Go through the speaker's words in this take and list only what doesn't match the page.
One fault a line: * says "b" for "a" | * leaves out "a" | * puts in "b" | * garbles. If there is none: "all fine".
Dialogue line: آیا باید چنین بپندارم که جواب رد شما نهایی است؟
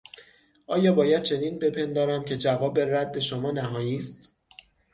all fine